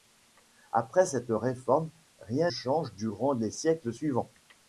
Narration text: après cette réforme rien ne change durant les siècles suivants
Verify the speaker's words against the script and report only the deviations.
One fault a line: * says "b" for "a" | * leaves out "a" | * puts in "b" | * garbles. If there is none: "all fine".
* leaves out "ne"